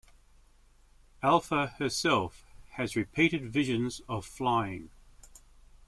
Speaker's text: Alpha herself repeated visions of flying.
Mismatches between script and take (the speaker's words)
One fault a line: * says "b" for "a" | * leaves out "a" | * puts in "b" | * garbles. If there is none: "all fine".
* puts in "has"